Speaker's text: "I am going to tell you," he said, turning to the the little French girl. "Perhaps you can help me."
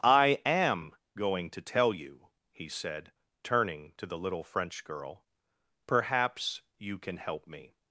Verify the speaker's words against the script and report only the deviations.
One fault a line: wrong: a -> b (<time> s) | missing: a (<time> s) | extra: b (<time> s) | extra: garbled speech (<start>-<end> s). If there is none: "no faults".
missing: the (4.2 s)